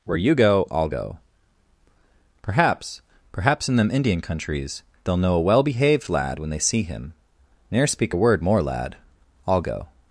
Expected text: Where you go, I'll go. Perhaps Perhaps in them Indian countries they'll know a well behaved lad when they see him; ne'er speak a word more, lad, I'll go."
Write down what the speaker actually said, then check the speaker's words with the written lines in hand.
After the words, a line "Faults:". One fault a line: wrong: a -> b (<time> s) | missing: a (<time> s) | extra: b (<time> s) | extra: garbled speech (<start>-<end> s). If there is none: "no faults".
Where you go, I'll go. Perhaps Perhaps in them Indian countries they'll know a well behaved lad when they see him; ne'er speak a word more, lad, I'll go."
Faults:
no faults